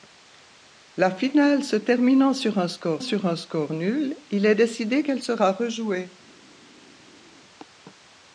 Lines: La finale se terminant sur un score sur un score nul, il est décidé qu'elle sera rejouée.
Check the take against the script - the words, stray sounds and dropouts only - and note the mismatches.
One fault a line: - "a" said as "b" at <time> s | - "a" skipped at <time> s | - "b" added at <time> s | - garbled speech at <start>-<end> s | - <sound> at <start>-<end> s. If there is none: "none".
none